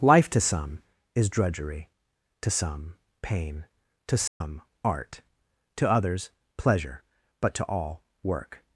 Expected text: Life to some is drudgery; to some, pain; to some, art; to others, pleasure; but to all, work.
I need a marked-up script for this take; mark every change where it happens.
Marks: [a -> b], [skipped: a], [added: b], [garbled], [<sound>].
Life to some is drudgery; to some, pain; to some, [dropout] art; to others, pleasure; but to all, work.